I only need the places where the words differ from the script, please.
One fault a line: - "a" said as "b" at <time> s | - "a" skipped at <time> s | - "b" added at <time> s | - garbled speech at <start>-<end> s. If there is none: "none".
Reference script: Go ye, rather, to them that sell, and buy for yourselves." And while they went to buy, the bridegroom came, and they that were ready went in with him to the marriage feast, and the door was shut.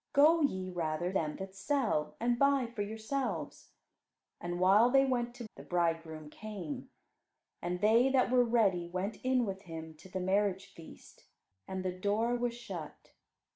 - "to" skipped at 1.1 s
- "buy" skipped at 5.4 s